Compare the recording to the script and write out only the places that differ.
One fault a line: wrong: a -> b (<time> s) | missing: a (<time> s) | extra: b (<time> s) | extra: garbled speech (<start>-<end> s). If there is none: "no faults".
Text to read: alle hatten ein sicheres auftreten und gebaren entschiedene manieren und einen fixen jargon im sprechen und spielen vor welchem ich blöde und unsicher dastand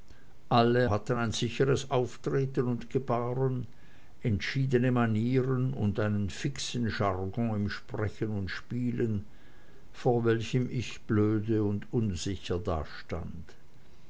no faults